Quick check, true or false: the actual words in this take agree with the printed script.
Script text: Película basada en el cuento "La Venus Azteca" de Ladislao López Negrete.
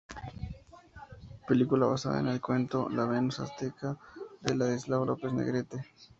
true